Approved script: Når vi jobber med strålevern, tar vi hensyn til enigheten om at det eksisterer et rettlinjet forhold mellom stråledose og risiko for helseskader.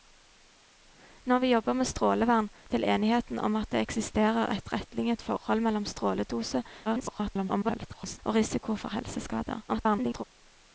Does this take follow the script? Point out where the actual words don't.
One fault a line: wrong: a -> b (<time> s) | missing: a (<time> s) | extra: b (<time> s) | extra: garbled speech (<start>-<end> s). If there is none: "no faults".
missing: tar vi hensyn (2.5 s)
extra: garbled speech (6.8-8.2 s)
extra: garbled speech (9.7-10.2 s)